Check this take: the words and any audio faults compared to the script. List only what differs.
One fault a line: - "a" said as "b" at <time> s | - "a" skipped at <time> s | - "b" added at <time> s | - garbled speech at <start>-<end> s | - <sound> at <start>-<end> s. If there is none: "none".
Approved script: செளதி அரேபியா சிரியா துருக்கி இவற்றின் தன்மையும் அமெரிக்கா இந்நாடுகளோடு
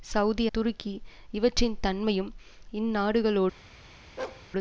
- "அரேபியா சிரியா" skipped at 0.5 s
- "அமெரிக்கா" skipped at 2.3 s
- bark at 4.2-4.5 s